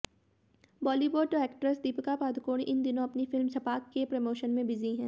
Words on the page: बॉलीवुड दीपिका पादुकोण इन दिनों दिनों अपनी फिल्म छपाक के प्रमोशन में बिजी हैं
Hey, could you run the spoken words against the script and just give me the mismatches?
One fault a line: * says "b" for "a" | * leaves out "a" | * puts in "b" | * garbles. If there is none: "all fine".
* puts in "एक्ट्रेस"
* leaves out "दिनों"